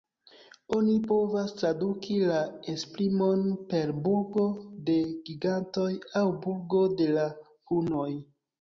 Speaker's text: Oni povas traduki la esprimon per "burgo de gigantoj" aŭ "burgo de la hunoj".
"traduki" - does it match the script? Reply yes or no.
yes